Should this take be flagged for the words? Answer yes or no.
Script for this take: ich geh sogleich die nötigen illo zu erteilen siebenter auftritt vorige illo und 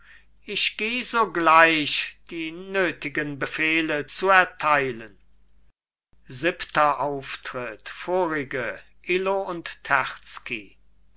yes